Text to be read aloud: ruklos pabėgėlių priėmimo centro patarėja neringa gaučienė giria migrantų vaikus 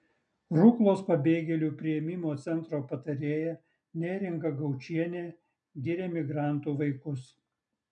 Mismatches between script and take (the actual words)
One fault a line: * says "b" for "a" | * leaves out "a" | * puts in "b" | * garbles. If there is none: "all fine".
all fine